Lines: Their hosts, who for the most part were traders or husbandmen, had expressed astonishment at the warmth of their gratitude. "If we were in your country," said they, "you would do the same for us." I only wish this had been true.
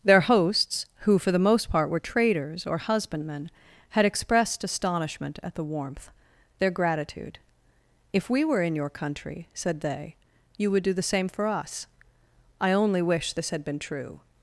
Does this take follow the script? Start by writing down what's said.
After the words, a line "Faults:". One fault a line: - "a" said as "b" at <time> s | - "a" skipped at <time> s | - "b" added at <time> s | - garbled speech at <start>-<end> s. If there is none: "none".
Their hosts, who for the most part were traders or husbandmen, had expressed astonishment at the warmth their gratitude. "If we were in your country," said they, "you would do the same for us." I only wish this had been true.
Faults:
- "of" skipped at 6.1 s